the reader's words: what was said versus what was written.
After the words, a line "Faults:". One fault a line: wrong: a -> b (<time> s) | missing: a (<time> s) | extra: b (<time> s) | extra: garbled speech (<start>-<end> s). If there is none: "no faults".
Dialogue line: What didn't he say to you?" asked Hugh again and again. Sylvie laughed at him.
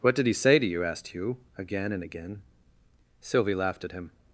What did he say to you?" asked Hugh again and again. Sylvie laughed at him.
Faults:
wrong: didn't -> did (0.1 s)